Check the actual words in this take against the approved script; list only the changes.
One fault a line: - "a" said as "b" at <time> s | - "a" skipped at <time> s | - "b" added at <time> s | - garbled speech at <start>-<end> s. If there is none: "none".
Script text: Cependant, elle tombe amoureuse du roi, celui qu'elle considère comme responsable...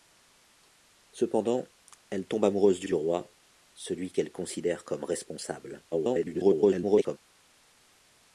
- "du" added at 2.8 s
- garbled speech at 5.9-7.2 s